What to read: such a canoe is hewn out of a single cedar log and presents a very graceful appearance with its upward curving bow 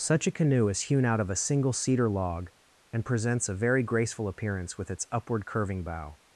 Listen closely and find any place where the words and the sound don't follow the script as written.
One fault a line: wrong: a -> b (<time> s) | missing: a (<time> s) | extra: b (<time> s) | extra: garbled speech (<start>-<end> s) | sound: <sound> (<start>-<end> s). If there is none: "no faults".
no faults